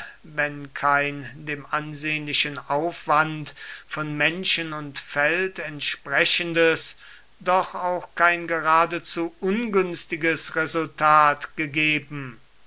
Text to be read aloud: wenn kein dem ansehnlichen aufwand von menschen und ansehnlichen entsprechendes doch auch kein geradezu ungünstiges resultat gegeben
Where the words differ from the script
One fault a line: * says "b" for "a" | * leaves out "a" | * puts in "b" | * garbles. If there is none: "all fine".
* says "feld" for "ansehnlichen"